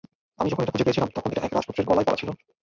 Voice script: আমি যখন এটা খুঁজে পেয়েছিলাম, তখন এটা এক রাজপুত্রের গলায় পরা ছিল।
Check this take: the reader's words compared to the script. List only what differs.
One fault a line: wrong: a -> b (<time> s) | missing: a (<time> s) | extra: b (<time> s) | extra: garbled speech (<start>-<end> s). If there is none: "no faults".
no faults